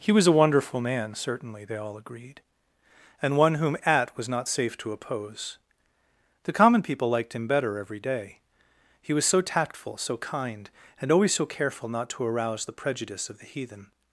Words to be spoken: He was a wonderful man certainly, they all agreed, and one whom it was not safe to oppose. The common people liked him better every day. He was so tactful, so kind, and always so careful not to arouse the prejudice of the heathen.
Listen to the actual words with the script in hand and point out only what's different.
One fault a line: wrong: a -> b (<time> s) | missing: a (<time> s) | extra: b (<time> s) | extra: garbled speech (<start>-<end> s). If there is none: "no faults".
wrong: it -> at (3.9 s)